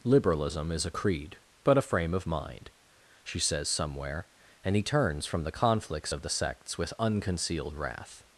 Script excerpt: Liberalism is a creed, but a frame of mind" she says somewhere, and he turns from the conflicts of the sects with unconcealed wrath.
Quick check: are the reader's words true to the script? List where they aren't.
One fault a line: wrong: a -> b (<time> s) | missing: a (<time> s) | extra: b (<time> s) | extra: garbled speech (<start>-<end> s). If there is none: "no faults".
no faults